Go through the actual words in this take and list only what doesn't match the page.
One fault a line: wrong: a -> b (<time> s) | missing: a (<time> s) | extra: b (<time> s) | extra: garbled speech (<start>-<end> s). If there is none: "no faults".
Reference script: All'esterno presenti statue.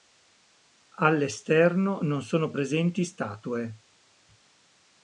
extra: non sono (2.0 s)